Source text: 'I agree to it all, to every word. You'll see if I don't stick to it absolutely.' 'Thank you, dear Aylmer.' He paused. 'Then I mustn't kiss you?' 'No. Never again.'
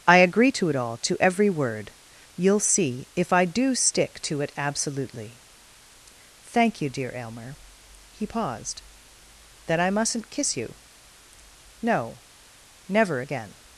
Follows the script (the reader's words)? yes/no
no